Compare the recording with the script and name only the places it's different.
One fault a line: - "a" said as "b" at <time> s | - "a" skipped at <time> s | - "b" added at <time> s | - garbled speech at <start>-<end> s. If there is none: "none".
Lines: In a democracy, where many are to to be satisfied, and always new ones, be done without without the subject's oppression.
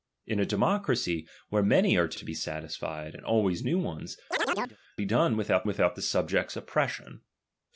none